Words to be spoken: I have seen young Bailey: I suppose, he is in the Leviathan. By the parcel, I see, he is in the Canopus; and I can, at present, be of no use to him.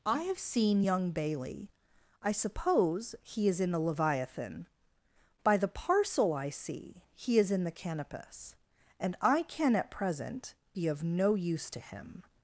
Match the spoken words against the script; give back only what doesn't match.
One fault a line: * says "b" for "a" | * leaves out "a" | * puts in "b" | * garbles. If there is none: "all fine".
all fine